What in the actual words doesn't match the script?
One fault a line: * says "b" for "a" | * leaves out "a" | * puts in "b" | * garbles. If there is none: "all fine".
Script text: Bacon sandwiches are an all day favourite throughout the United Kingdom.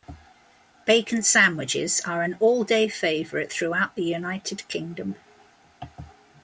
all fine